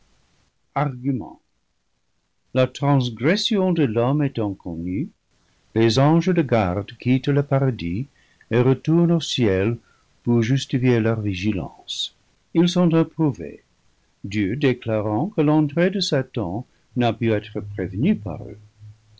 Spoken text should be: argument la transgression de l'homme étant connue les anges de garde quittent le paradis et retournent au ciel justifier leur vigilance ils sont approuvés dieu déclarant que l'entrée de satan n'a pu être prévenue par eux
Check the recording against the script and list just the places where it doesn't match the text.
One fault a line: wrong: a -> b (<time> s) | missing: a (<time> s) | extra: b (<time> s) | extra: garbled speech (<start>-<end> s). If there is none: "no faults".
extra: pour (10.2 s)